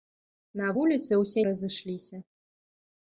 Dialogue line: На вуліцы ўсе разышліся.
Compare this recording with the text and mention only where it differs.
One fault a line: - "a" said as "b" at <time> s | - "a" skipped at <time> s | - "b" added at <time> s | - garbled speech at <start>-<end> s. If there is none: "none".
none